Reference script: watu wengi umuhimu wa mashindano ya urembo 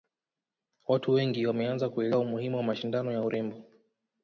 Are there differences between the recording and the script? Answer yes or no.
yes